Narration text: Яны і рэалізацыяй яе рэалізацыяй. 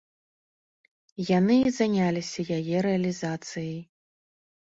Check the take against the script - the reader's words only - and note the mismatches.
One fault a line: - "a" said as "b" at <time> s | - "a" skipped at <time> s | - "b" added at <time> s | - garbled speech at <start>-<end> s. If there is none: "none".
- "рэалізацыяй" said as "заняліся" at 1.8 s